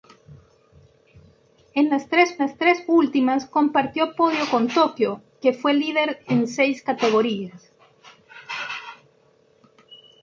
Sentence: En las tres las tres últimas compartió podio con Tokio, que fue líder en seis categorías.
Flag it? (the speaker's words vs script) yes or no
no